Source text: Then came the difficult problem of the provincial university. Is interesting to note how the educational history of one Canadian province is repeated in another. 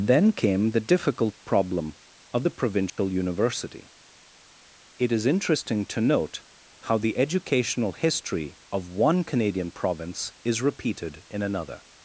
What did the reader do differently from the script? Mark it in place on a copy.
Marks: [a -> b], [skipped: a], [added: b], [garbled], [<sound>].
Then came the difficult problem of the provincial [dropout] university. [added: It] Is interesting to note how the educational history of one Canadian province is repeated in another.